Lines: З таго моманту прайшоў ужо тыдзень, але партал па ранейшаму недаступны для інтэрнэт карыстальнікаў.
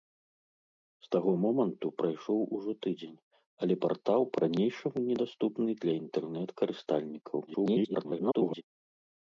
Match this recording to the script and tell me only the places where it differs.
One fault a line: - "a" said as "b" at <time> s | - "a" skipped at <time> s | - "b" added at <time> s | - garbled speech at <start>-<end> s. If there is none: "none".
- garbled speech at 7.5-8.6 s